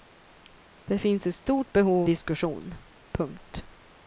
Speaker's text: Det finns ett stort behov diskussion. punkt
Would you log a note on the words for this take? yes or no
no